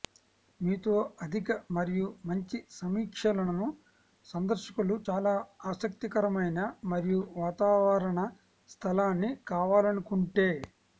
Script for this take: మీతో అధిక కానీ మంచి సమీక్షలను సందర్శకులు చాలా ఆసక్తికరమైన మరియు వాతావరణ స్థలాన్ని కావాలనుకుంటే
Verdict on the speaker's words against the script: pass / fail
fail